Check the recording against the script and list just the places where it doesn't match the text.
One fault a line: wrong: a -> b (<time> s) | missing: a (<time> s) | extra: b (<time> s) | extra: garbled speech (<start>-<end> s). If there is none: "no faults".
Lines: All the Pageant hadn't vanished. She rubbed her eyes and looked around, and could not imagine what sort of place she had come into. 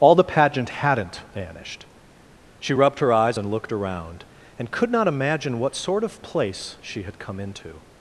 no faults